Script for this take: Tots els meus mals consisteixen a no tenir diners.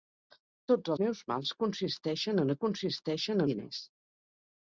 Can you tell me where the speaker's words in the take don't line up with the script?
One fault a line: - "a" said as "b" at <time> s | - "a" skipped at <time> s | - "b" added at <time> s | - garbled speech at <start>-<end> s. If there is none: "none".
- "els" skipped at 0.9 s
- "tenir" said as "consisteixen" at 2.7 s